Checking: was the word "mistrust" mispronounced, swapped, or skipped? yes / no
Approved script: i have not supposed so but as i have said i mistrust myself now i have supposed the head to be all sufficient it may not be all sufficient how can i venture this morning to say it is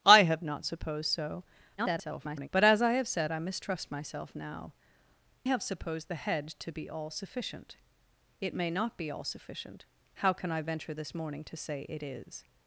no